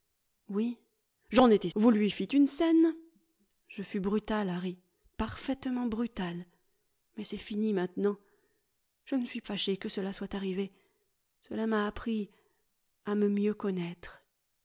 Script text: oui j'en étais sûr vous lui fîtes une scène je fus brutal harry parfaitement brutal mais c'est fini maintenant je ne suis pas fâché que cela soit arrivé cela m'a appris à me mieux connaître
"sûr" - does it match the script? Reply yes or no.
no